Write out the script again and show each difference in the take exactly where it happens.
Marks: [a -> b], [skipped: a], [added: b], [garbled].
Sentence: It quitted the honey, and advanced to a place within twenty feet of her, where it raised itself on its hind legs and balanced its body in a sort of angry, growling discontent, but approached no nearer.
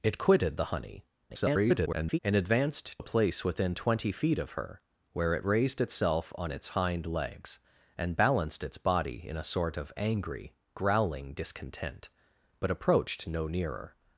It quitted the honey, [garbled] and advanced [skipped: to] a place within twenty feet of her, where it raised itself on its hind legs and balanced its body in a sort of angry, growling discontent, but approached no nearer.